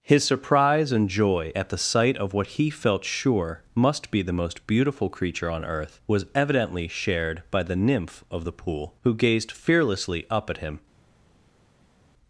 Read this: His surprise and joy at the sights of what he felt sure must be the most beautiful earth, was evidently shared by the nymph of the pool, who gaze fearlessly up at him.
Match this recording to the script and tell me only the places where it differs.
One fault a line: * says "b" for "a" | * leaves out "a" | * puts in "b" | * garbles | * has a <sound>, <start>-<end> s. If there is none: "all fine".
* says "sight" for "sights"
* puts in "creature on"
* says "gazed" for "gaze"